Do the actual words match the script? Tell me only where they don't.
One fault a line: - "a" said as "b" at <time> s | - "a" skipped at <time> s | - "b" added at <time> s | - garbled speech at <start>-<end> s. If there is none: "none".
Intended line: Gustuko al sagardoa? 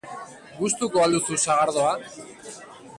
- "duzu" added at 1.1 s